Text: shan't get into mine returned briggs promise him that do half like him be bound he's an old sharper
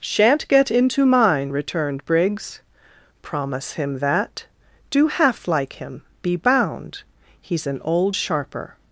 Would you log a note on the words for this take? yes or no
no